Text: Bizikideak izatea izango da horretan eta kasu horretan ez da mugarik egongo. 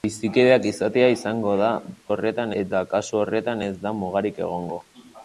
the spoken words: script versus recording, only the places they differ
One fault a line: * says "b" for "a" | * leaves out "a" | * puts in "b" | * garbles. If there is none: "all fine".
all fine